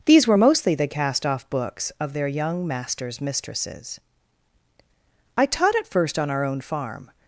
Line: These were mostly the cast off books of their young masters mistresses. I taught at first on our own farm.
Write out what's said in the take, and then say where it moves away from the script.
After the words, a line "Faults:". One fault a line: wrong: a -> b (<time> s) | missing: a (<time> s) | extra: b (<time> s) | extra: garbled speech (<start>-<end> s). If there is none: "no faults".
These were mostly the cast off books of their young masters mistresses. I taught at first on our own farm.
Faults:
no faults